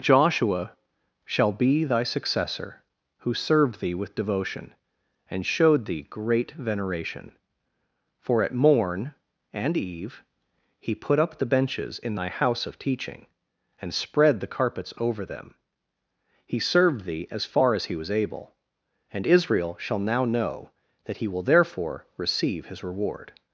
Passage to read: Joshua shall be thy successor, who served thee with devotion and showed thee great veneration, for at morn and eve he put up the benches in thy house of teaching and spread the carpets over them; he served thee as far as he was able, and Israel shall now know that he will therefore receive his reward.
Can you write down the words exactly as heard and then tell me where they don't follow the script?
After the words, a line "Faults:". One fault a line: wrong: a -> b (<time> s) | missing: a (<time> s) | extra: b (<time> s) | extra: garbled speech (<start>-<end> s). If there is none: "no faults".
Joshua shall be thy successor, who served thee with devotion and showed thee great veneration, for at morn and eve he put up the benches in thy house of teaching and spread the carpets over them; he served thee as far as he was able, and Israel shall now know that he will therefore receive his reward.
Faults:
no faults